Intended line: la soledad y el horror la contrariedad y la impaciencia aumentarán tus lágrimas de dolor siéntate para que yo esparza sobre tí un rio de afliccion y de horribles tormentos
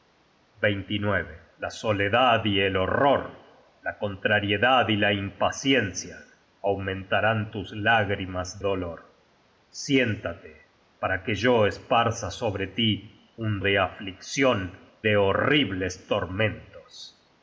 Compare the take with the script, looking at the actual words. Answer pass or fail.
fail